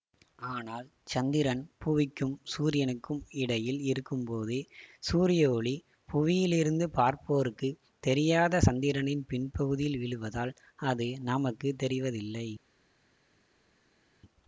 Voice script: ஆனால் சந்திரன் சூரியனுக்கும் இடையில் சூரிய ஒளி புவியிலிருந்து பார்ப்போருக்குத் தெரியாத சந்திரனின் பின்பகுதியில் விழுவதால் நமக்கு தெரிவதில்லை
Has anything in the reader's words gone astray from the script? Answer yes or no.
yes